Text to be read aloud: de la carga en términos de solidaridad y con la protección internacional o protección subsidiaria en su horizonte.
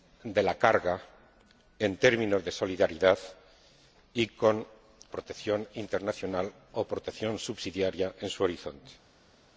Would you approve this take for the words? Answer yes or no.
no